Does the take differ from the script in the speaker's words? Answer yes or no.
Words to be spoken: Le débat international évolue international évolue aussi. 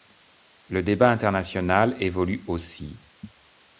yes